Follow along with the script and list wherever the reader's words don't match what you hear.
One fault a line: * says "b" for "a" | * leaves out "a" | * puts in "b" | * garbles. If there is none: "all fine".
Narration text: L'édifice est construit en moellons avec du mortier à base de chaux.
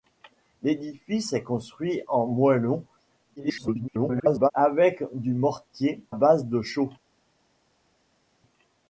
* garbles
* leaves out "à"